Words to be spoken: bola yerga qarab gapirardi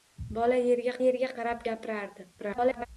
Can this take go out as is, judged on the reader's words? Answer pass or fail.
fail